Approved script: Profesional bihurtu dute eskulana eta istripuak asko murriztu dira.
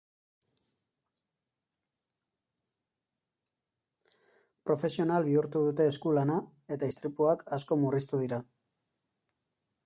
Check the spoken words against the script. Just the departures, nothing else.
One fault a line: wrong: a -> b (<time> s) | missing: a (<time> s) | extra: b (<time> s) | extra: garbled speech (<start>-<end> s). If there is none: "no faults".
no faults